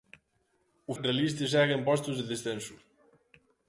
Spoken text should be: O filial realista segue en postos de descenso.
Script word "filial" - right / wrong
wrong